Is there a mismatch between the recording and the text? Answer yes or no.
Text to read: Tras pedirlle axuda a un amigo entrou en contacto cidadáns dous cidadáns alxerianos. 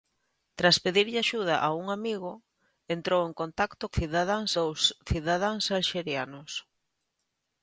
no